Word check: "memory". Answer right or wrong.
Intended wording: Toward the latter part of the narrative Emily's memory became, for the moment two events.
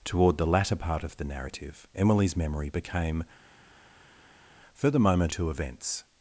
right